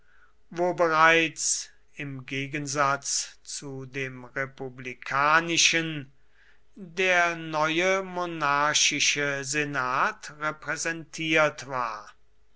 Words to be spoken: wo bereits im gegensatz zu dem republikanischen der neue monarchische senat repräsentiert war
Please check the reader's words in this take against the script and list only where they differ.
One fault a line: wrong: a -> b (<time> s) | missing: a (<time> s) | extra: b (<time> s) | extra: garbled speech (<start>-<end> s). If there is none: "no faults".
no faults